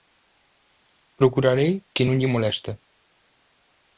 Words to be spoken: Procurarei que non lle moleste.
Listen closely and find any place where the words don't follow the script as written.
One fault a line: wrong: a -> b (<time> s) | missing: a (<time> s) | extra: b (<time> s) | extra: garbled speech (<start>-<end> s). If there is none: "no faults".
no faults